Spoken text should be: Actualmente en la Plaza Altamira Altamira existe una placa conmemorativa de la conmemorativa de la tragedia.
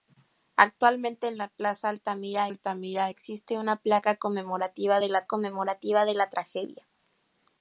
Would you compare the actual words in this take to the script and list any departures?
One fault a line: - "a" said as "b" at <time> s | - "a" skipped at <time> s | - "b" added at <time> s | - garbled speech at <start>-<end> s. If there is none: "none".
none